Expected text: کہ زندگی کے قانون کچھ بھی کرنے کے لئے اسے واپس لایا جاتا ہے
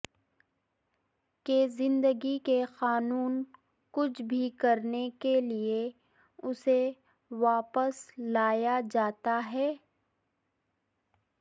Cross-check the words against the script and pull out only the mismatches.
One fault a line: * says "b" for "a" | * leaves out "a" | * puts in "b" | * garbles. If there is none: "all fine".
all fine